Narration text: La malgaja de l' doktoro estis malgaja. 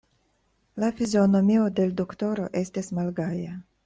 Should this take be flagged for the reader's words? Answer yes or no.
yes